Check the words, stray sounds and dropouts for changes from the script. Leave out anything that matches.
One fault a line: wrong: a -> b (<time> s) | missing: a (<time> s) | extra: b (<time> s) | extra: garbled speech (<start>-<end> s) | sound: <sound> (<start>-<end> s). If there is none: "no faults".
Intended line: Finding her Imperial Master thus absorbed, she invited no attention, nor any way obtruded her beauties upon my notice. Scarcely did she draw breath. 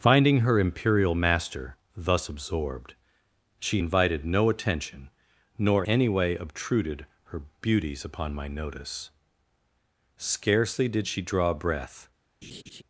sound: laugh (12.4-12.8 s)